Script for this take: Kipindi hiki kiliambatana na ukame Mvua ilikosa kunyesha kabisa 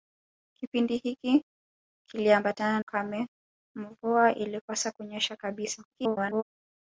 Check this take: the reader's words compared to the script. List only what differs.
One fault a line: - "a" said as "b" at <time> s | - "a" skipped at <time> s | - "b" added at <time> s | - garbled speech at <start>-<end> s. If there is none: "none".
- "na" skipped at 2.8 s
- garbled speech at 5.9-6.4 s